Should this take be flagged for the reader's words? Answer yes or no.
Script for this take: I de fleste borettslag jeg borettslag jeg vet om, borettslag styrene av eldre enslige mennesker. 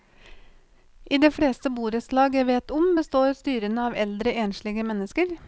yes